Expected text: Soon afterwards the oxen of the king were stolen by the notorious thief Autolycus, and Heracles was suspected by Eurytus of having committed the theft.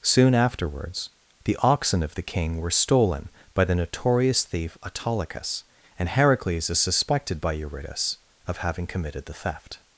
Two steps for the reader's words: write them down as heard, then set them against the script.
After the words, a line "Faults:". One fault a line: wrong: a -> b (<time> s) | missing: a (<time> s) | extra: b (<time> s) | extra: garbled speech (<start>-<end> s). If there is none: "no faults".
Soon afterwards the oxen of the king were stolen by the notorious thief Autolycus, and Heracles is suspected by Eurytus of having committed the theft.
Faults:
wrong: was -> is (6.7 s)